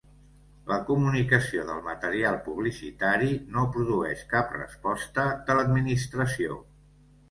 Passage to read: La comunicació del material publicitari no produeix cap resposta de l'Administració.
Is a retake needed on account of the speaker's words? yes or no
no